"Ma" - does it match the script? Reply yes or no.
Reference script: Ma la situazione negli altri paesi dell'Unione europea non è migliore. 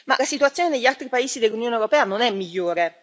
yes